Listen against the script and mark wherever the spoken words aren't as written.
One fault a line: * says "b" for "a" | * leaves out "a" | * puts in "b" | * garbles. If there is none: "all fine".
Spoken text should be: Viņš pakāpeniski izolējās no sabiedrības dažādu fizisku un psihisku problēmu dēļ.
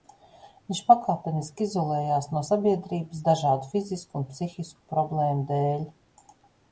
all fine